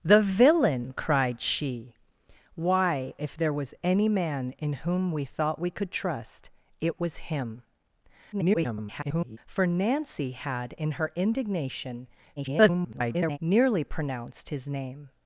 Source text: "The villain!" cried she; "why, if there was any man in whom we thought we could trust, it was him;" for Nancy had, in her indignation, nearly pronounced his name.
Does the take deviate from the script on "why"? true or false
false